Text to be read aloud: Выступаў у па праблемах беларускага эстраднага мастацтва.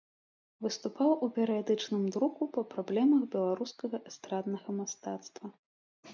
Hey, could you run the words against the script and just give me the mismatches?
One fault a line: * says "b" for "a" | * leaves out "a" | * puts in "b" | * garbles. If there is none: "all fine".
* puts in "перыядычным друку"